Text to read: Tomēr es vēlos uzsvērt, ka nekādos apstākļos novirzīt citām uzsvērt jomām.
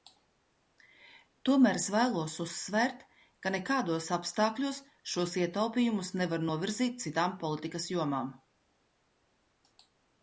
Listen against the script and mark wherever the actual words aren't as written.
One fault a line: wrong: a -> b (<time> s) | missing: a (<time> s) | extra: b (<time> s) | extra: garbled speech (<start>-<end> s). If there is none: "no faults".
extra: šos ietaupījumus nevar (5.1 s)
wrong: uzsvērt -> politikas (7.4 s)